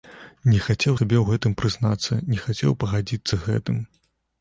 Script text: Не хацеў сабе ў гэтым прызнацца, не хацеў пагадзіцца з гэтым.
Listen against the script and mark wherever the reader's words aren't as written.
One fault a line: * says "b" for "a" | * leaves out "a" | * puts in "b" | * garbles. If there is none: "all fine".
all fine